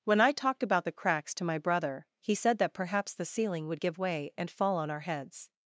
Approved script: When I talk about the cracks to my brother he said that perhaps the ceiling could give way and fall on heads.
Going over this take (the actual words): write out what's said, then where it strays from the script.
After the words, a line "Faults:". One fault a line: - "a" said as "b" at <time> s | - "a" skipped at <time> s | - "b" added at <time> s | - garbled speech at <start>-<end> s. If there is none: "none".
When I talked about the cracks to my brother he said that perhaps the ceiling would give way and fall on our heads.
Faults:
- "talk" said as "talked" at 0.3 s
- "could" said as "would" at 3.7 s
- "our" added at 4.9 s